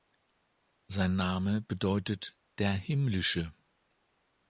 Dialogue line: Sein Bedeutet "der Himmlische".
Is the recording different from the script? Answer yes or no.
yes